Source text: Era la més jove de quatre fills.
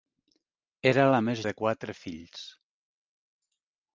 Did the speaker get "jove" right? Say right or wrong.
wrong